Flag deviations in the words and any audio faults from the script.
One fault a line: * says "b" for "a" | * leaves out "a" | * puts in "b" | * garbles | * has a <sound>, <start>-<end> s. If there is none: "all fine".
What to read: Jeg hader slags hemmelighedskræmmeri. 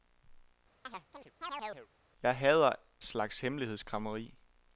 * has a chirp, 0.8-1.9 s